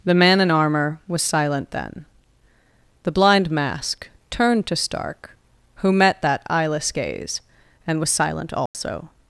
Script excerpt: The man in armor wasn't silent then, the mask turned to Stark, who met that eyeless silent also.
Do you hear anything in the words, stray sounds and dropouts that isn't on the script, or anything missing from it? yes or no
yes